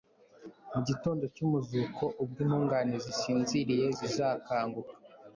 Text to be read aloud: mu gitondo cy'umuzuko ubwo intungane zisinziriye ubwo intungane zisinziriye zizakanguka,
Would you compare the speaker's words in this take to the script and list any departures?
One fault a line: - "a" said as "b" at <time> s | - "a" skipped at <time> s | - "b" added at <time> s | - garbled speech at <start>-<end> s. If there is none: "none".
- "ubwo intungane zisinziriye" skipped at 3.9 s